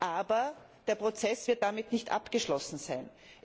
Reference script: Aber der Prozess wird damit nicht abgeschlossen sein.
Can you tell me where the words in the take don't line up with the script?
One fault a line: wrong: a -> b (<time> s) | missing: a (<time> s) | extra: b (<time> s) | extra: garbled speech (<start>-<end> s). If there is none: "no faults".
no faults